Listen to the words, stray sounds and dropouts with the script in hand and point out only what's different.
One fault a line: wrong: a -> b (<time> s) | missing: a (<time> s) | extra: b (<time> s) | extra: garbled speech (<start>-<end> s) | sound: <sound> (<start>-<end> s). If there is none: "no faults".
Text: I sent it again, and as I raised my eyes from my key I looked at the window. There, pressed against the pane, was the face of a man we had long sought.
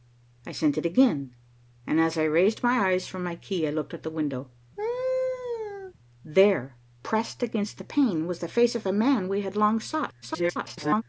sound: laugh (4.8-5.9 s)
extra: garbled speech (10.2-11.0 s)